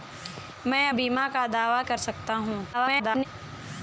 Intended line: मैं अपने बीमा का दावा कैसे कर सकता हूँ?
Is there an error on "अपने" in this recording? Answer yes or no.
yes